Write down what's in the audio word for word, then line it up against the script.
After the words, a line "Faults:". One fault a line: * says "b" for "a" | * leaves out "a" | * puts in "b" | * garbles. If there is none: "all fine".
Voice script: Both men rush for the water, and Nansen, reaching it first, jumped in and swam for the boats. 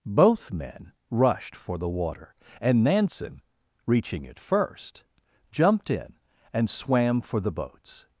Both men rushed for the water, and Nansen, reaching it first, jumped in and swam for the boats.
Faults:
* says "rushed" for "rush"